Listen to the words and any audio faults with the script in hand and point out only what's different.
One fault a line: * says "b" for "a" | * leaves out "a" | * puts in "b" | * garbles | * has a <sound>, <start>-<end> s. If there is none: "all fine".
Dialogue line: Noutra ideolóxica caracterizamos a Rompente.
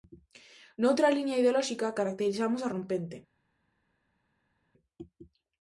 * puts in "liña"